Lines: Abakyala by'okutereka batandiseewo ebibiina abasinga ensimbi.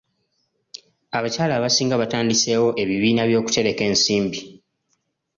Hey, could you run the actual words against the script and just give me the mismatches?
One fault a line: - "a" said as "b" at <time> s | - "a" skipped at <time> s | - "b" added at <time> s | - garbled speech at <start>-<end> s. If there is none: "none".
- "by'okutereka" said as "abasinga" at 1.6 s
- "abasinga" said as "by'okutereka" at 3.3 s